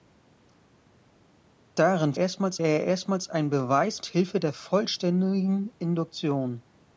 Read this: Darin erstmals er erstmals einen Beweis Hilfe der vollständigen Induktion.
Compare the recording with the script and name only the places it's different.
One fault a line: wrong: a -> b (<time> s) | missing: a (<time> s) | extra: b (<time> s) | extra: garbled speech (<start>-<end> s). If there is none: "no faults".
no faults